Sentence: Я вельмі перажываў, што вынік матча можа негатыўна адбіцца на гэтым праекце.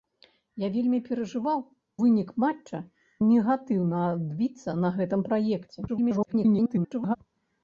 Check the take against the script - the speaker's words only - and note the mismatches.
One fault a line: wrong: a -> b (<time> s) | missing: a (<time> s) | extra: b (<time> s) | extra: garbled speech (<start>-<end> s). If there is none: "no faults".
missing: што (1.6 s)
missing: можа (2.8 s)
extra: garbled speech (5.9-7.2 s)